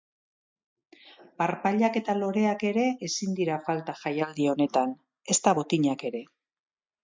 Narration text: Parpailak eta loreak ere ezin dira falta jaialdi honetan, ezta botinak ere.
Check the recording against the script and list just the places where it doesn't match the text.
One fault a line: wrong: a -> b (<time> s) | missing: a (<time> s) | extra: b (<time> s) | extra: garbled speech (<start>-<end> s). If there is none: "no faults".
no faults